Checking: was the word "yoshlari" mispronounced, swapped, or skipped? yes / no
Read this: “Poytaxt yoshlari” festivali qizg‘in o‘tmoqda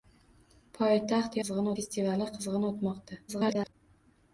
yes